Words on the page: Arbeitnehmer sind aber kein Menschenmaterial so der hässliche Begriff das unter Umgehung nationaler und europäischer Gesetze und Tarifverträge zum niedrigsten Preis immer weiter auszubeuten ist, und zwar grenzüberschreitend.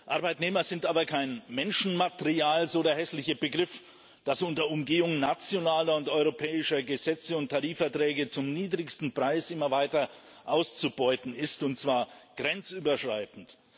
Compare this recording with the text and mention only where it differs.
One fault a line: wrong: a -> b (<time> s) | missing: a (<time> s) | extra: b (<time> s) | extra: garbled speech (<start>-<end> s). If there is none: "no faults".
no faults